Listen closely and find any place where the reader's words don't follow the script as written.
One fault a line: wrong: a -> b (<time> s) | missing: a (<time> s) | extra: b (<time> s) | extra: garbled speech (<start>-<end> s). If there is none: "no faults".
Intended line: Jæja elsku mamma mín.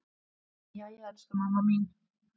no faults